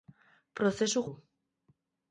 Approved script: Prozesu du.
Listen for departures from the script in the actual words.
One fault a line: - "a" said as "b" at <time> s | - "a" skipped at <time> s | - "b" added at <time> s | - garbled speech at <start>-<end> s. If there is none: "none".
none